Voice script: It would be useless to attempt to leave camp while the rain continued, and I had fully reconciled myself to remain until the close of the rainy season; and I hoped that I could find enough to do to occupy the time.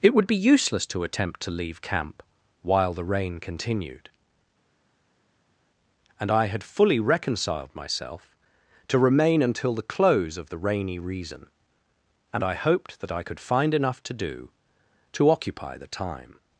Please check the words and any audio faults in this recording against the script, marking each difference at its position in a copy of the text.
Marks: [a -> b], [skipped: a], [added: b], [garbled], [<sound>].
It would be useless to attempt to leave camp while the rain continued, and I had fully reconciled myself to remain until the close of the rainy [season; -> reason] and I hoped that I could find enough to do to occupy the time.